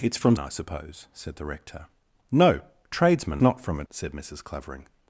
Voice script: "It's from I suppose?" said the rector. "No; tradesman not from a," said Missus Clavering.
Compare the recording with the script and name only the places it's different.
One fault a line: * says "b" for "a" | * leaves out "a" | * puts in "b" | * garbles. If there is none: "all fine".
all fine